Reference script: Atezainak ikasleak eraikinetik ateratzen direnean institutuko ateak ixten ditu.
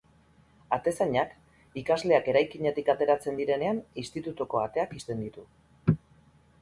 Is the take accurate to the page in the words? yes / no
yes